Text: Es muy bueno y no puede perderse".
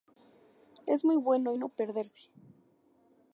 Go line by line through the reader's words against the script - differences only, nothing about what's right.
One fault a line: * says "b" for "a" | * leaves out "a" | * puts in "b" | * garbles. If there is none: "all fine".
* leaves out "puede"